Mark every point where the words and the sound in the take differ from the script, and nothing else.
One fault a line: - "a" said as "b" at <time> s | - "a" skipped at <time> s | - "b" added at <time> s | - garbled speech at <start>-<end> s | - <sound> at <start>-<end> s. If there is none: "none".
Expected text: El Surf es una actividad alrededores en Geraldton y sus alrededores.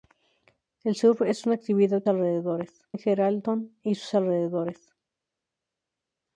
none